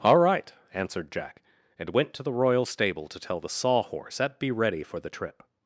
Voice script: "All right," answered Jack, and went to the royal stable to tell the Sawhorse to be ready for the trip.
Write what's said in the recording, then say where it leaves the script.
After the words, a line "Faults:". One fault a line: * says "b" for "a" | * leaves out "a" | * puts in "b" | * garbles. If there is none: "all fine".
"All right," answered Jack, and went to the royal stable to tell the Sawhorse at be ready for the trip.
Faults:
* says "at" for "to"